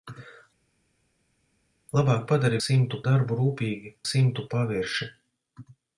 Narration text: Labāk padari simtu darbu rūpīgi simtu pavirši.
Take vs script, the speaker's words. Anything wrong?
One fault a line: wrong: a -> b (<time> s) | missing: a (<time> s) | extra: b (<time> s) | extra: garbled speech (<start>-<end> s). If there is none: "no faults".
no faults